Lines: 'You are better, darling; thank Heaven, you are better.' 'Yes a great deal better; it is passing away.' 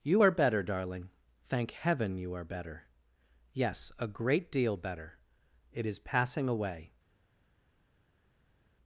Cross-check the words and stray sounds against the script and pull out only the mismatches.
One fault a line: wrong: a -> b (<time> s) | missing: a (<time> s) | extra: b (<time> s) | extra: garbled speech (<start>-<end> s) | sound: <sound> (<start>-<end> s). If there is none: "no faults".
no faults